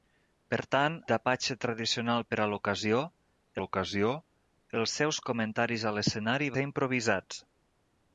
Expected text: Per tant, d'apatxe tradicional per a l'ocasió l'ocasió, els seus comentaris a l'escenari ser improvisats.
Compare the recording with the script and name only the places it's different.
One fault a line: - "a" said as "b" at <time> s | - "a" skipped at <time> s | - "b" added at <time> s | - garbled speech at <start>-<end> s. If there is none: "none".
none